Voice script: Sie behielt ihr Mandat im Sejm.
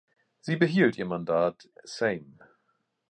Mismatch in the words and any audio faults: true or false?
true